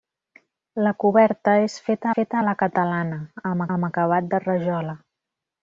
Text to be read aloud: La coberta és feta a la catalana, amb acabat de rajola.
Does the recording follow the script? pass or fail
fail